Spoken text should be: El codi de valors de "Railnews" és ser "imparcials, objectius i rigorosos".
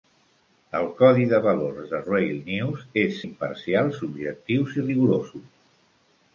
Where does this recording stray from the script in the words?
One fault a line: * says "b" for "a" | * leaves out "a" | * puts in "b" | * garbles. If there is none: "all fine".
* leaves out "ser"